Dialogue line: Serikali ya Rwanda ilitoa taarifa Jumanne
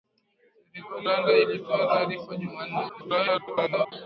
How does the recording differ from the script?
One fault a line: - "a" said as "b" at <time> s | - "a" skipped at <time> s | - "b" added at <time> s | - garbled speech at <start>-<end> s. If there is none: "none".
- "ya" skipped at 1.1 s
- garbled speech at 2.9-3.9 s